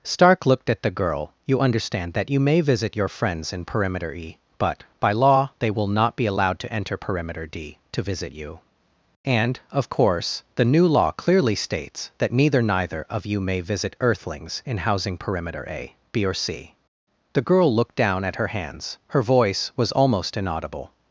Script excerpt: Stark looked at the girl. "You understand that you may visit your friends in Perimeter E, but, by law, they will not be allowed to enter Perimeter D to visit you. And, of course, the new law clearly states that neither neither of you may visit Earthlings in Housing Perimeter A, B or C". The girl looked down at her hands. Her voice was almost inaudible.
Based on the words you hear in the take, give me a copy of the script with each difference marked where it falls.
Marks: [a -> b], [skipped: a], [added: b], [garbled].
Stark looked at the girl. "You understand that you may visit your friends in Perimeter E, but, by law, they will not be allowed to enter Perimeter D to visit you. And, of course, the new law clearly states that neither neither of you may visit Earthlings in Housing Perimeter A, B or C". The girl looked down at her hands. Her voice was almost inaudible.